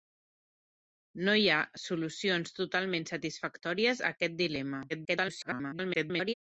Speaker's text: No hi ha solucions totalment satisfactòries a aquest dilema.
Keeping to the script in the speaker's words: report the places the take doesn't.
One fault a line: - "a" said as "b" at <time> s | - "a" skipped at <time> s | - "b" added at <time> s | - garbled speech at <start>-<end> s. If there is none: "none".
- garbled speech at 4.9-6.3 s